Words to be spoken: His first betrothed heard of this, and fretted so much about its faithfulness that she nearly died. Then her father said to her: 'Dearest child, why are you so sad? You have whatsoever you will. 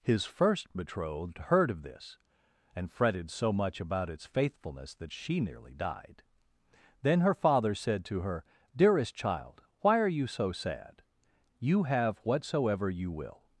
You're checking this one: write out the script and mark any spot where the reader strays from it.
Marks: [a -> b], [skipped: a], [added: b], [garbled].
His first betrothed heard of this, and fretted so much about its faithfulness that she nearly died. Then her father said to her: 'Dearest child, why are you so sad? You have whatsoever you will.